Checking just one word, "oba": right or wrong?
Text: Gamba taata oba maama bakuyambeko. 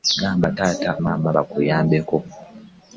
wrong